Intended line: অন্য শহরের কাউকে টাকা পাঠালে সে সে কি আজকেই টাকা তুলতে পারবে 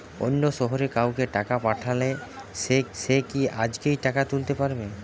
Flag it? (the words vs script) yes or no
no